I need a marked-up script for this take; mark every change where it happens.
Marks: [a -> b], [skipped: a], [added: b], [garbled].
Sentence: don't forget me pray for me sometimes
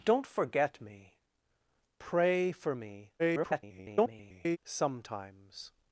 don't forget me pray for me [garbled] sometimes